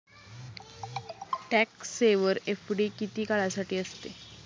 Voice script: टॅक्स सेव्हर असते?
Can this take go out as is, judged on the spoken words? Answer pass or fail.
fail